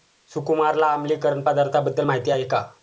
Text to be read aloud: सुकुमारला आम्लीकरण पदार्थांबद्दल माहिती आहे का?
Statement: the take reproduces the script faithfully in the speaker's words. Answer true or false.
true